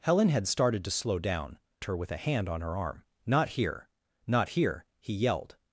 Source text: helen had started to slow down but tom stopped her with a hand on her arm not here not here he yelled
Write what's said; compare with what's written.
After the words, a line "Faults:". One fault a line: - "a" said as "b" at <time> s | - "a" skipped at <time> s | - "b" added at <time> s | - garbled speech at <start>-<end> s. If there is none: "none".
helen had started to slow down her with a hand on her arm not here not here he yelled
Faults:
- "but tom stopped" skipped at 1.6 s